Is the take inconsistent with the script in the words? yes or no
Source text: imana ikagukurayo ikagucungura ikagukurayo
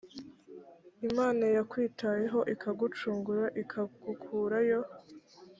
yes